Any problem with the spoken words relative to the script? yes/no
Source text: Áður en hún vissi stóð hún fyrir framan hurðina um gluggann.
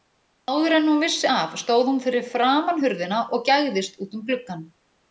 yes